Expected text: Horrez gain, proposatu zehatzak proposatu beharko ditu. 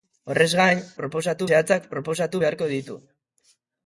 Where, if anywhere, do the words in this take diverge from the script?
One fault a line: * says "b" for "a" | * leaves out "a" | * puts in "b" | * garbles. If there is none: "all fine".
all fine